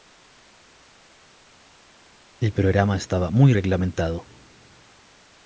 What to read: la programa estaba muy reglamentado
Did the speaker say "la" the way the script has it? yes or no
no